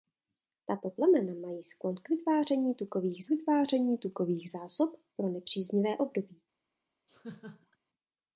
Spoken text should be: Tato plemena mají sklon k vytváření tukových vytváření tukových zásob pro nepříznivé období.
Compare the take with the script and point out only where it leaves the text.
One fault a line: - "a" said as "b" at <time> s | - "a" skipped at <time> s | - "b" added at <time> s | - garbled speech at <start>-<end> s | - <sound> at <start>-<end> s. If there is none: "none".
- laugh at 7.1-7.8 s